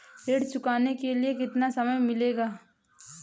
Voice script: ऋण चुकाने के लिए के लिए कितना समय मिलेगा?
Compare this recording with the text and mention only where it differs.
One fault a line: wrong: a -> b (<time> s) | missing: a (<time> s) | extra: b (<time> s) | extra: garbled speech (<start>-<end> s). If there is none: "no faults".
missing: के लिए (1.3 s)